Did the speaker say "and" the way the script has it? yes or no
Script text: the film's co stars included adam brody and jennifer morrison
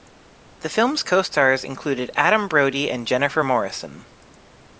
yes